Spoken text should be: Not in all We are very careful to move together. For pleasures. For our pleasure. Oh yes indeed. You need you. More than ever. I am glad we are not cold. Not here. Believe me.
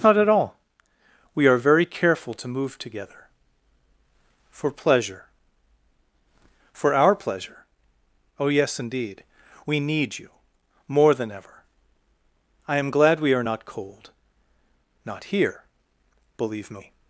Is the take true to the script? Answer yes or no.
no